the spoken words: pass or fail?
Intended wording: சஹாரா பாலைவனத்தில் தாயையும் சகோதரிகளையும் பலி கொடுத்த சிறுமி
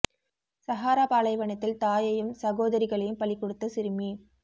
pass